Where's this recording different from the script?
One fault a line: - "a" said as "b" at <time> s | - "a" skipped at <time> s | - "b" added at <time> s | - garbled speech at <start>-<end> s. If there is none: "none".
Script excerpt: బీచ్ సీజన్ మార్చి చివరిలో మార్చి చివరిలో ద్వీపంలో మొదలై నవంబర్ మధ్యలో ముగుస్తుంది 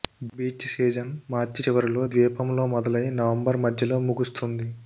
- "మార్చి చివరిలో" skipped at 2.0 s